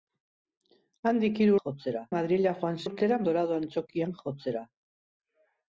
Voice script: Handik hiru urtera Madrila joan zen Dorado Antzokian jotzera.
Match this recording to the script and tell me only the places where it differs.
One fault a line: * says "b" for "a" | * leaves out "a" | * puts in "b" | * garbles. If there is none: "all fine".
* says "jotzera" for "urtera"
* says "urtera" for "zen"